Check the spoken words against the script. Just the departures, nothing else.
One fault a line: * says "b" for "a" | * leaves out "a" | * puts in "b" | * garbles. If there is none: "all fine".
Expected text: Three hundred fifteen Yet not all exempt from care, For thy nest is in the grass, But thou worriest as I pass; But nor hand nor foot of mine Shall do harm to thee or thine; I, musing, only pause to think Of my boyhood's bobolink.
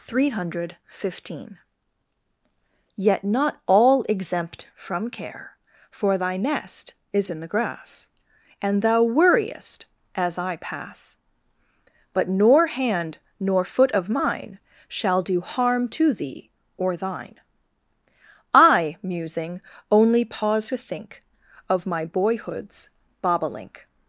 * says "And" for "But"